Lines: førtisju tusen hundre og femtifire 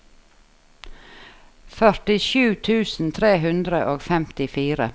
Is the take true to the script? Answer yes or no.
no